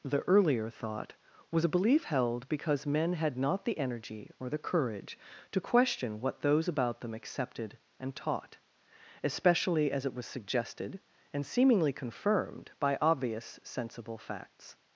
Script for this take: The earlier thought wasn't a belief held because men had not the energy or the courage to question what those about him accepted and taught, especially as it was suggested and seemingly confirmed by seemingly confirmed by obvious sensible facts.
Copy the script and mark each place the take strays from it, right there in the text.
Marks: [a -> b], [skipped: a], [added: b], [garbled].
The earlier thought [wasn't -> was] a belief held because men had not the energy or the courage to question what those about [him -> them] accepted and taught, especially as it was suggested and seemingly confirmed by [skipped: seemingly confirmed by] obvious sensible facts.